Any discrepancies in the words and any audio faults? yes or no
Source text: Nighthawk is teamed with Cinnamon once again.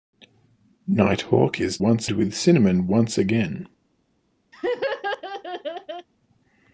yes